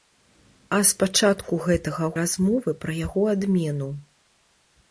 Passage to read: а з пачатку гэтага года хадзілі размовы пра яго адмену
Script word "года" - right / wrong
wrong